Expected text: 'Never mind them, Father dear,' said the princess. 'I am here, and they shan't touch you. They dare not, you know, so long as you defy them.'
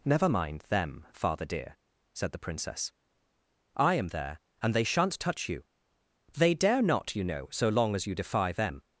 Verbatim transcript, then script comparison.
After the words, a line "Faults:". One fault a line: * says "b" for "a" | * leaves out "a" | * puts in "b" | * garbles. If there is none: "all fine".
'Never mind them, Father dear,' said the princess. 'I am there, and they shan't touch you. They dare not, you know, so long as you defy them.'
Faults:
* says "there" for "here"